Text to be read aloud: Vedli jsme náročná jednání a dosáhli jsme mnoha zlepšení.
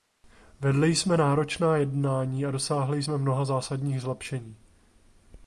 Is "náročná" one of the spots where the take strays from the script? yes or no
no